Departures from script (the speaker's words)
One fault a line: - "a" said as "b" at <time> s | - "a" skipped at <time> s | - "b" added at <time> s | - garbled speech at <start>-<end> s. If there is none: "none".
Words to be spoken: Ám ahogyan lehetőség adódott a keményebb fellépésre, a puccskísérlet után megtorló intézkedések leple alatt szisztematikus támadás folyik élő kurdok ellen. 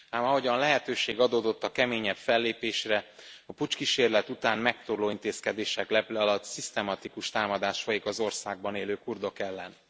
- "az országban" added at 8.1 s